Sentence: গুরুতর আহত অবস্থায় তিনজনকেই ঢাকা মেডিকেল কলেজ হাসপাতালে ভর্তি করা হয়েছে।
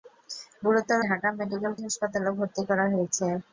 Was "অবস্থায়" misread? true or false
true